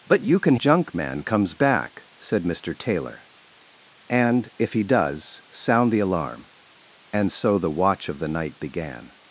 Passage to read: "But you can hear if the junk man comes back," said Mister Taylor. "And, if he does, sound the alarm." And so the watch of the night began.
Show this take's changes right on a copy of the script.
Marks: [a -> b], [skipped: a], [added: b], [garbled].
"But you can [skipped: hear if the] junk man comes back," said Mister Taylor. "And, if he does, sound the alarm." And so the watch of the night began.